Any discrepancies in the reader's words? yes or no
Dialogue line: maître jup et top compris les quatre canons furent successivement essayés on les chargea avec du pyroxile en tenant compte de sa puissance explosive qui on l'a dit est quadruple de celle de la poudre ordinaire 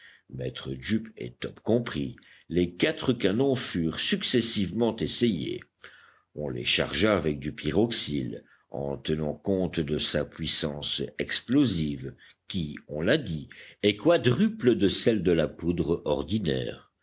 no